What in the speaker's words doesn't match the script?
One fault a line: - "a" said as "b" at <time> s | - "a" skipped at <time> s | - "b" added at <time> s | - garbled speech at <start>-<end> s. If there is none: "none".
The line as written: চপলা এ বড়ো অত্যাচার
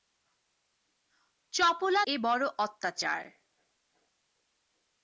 none